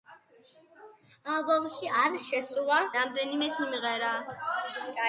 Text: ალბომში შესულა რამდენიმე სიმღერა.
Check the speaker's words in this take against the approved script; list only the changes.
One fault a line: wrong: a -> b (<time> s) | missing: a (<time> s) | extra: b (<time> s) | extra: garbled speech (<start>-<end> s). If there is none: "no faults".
extra: არ (2.0 s)